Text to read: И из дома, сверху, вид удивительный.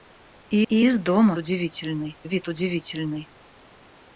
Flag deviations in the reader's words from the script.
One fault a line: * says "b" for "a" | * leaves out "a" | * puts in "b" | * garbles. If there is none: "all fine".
* puts in "и"
* says "удивительный" for "сверху"